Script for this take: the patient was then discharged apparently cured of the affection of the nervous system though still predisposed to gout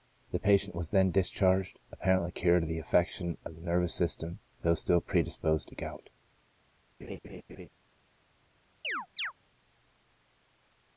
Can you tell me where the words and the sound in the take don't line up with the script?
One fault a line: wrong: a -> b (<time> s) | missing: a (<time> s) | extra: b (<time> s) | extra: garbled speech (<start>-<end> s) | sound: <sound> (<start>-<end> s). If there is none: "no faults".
sound: laugh (7.0-7.7 s)
sound: chirp (8.8-9.3 s)